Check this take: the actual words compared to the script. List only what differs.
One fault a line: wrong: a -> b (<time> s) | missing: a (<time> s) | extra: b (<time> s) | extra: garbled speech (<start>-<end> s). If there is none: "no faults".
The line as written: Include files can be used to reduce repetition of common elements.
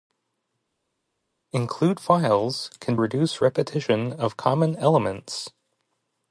missing: be used to (3.0 s)